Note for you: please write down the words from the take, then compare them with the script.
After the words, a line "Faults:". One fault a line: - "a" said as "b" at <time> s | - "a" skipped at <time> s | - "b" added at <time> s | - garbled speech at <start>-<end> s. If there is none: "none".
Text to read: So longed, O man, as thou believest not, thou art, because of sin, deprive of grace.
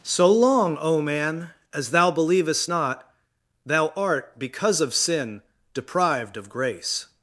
So long, O man, as thou believest not, thou art, because of sin, deprived of grace.
Faults:
- "longed" said as "long" at 0.3 s
- "deprive" said as "deprived" at 5.7 s